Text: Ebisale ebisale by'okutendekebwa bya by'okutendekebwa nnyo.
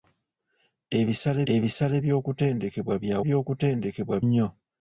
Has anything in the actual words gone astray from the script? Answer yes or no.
no